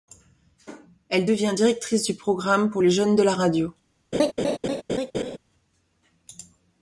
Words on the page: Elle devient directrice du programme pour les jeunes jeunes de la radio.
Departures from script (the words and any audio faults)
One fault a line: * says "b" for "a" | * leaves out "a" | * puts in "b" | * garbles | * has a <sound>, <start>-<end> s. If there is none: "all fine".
* leaves out "jeunes"
* has a laugh, 4.1-5.4 s